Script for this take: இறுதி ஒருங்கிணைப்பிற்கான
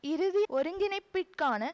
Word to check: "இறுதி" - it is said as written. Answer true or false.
true